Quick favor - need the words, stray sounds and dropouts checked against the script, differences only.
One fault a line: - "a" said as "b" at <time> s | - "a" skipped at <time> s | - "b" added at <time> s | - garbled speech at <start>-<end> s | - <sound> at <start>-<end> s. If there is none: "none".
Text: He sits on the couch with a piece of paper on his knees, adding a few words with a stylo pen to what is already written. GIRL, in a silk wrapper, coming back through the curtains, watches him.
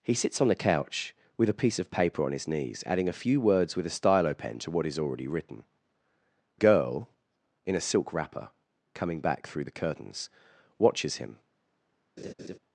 - laugh at 12.2-12.6 s